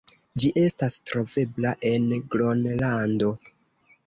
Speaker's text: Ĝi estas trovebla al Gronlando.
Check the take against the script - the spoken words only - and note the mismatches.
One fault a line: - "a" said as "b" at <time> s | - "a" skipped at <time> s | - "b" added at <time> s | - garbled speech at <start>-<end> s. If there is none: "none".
- "al" said as "en" at 1.9 s